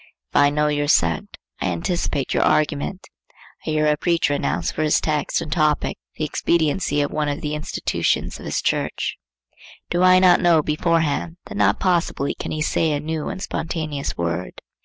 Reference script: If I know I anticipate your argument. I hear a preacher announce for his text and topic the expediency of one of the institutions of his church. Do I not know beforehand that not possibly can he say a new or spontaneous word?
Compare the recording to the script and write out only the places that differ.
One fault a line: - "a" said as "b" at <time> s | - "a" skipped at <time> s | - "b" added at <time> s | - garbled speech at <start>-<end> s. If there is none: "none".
- "your sect" added at 0.7 s
- "or" said as "and" at 13.3 s